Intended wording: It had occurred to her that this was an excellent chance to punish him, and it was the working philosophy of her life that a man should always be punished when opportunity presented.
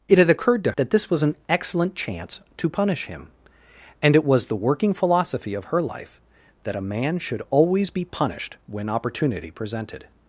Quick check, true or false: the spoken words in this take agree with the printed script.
false